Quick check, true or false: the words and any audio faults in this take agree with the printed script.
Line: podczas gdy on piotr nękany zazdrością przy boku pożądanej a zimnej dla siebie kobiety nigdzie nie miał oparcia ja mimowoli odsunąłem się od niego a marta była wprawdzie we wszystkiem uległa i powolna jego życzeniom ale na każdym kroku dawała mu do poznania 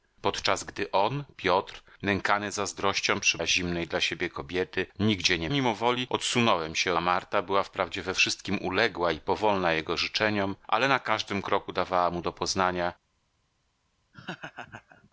false